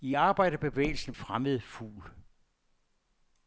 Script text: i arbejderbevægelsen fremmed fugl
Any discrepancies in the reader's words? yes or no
no